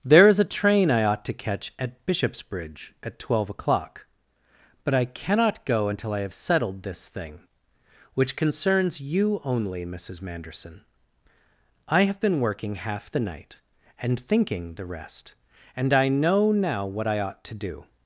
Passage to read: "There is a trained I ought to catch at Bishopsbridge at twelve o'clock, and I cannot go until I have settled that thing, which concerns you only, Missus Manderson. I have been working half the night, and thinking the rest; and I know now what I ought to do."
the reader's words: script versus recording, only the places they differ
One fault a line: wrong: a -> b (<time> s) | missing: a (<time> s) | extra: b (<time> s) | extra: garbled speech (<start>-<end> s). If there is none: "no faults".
wrong: trained -> train (0.5 s)
wrong: and -> but (4.8 s)
wrong: that -> this (6.8 s)